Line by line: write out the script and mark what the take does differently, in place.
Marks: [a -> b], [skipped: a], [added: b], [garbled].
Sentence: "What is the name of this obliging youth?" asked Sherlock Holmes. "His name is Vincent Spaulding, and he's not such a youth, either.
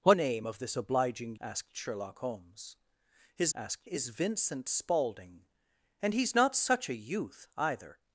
"What [skipped: is the] name of this obliging [skipped: youth?"] asked Sherlock Holmes. "His [name -> asked] is Vincent Spaulding, and he's not such a youth, either.